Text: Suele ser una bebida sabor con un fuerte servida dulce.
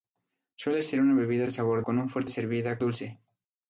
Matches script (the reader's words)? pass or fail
pass